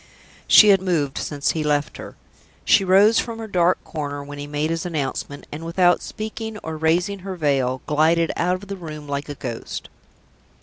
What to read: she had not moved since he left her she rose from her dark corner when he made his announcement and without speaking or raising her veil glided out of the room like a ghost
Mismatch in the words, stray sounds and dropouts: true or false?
true